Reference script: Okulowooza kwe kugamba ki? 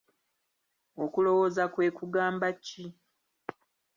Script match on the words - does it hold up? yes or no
yes